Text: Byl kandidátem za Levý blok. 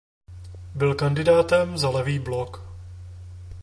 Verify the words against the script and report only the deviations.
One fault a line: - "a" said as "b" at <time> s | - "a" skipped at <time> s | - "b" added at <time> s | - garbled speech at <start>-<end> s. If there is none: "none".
none